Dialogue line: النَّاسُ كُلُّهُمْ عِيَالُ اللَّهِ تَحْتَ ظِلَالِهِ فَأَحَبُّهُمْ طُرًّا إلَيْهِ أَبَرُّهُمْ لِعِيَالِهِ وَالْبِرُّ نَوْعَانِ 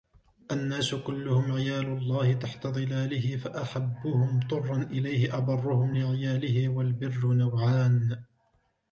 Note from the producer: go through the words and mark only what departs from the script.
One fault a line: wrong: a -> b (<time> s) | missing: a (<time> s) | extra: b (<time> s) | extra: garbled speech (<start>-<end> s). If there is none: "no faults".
no faults